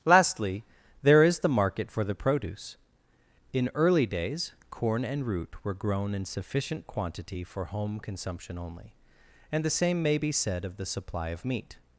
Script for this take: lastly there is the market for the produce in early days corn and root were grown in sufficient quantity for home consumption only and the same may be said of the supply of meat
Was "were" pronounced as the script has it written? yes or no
yes